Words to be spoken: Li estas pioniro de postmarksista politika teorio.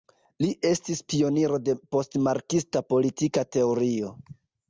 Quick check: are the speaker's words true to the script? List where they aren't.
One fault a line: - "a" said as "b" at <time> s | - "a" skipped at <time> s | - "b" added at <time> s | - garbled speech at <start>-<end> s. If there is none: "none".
- "estas" said as "estis" at 0.7 s